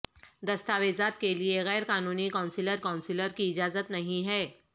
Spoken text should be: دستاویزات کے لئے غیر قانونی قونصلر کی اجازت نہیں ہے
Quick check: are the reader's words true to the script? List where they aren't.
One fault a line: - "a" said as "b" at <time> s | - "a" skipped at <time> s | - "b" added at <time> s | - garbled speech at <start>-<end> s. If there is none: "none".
- "قونصلر" added at 2.8 s